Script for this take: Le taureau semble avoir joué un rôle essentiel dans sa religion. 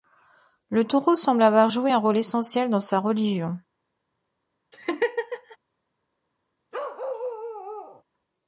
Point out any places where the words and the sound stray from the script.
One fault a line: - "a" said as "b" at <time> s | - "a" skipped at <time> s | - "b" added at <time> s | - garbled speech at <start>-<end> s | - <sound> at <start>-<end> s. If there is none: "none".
- laugh at 4.7-5.6 s
- bark at 6.7-8.0 s